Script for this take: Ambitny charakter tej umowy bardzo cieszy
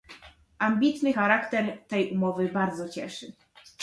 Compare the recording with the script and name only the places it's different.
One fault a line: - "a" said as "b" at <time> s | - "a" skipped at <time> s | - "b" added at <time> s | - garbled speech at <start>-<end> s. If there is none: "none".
none